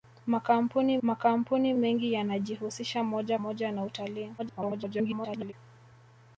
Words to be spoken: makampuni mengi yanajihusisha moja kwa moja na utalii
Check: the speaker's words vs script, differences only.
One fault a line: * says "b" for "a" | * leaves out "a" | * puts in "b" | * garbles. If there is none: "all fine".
* puts in "makampuni"
* leaves out "kwa"
* garbles